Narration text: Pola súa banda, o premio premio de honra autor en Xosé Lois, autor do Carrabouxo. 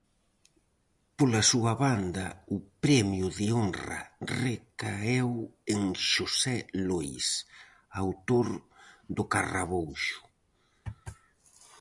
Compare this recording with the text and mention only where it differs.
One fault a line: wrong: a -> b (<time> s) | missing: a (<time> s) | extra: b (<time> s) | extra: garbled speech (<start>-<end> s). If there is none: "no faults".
missing: premio (3.3 s)
wrong: autor -> recaeu (4.4 s)